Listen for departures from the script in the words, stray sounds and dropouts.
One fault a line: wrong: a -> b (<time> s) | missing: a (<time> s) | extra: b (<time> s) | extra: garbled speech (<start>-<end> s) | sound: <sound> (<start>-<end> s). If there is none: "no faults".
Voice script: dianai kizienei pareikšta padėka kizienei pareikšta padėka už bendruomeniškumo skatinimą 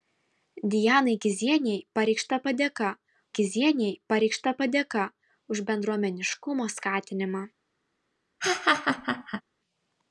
sound: laugh (8.4-9.4 s)